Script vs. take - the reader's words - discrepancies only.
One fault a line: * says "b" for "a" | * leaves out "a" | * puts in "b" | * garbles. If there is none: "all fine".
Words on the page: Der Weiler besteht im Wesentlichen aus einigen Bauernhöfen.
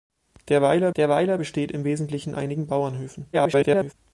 * puts in "der Weiler"
* leaves out "aus"
* garbles